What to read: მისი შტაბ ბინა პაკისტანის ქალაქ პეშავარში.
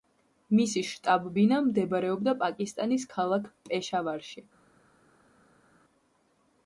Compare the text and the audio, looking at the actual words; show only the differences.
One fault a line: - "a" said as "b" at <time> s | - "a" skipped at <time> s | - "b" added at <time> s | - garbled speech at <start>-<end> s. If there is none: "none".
- "მდებარეობდა" added at 1.6 s